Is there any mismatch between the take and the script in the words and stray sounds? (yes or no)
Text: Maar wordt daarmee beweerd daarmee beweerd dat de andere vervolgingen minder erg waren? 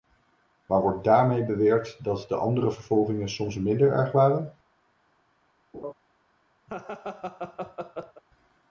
yes